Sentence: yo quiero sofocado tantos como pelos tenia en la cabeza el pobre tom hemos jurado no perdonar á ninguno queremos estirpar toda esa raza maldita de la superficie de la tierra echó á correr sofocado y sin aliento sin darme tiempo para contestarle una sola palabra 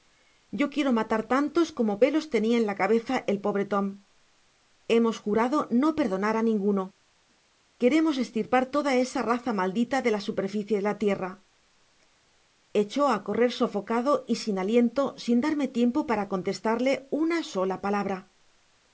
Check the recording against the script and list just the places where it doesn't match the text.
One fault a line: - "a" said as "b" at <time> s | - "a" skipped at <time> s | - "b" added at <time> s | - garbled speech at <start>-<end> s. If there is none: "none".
- "sofocado" said as "matar" at 1.0 s